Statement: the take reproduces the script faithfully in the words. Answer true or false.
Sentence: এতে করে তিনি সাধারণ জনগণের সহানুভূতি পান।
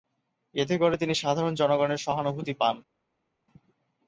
true